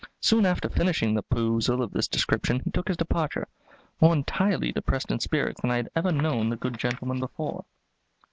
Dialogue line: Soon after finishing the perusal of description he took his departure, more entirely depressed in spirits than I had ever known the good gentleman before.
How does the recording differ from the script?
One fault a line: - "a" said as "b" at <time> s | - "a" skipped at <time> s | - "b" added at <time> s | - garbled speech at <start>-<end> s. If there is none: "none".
- "this" added at 1.9 s